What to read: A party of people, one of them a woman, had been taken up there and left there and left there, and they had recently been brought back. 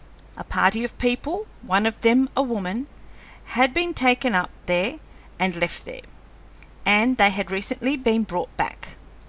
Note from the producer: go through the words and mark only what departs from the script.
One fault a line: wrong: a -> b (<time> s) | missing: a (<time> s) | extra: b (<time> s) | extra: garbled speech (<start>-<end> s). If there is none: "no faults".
missing: left there and (7.2 s)